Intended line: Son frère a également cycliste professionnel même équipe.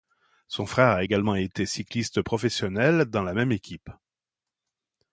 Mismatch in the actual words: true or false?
true